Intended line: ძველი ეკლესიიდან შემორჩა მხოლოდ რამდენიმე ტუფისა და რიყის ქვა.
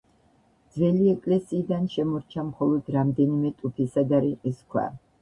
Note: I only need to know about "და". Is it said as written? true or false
true